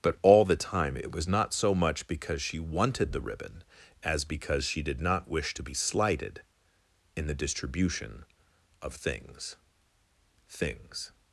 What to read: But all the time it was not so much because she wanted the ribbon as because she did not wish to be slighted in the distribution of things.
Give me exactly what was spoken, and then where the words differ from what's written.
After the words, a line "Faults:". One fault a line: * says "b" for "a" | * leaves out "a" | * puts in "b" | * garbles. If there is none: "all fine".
But all the time it was not so much because she wanted the ribbon as because she did not wish to be slighted in the distribution of things things.
Faults:
* puts in "things"